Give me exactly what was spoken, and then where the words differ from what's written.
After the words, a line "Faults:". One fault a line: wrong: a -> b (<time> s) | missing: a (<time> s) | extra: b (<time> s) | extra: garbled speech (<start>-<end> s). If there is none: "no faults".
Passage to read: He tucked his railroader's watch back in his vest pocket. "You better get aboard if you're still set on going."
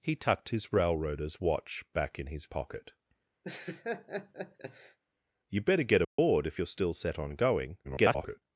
He tucked his railroader's watch back in his pocket. "You better get aboard if you're still set on going." [garbled]
Faults:
missing: vest (2.5 s)
extra: garbled speech (7.8-8.4 s)